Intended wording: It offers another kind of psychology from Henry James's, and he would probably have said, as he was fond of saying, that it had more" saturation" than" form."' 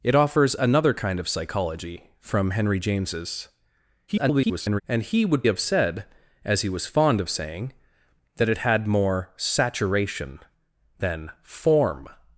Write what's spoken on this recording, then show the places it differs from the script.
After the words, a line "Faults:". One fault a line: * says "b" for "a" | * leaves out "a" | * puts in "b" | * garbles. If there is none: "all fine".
It offers another kind of psychology from Henry James's, [garbled] and he would have said, as he was fond of saying, that it had more" saturation" than" form."'
Faults:
* garbles
* leaves out "probably"